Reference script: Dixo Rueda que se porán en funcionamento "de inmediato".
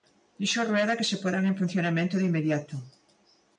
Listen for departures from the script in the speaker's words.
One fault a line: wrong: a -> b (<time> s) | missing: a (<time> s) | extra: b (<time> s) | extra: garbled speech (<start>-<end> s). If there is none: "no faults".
no faults